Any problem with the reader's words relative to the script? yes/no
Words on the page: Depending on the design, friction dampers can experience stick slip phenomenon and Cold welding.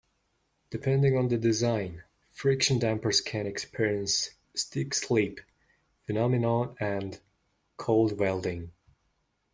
no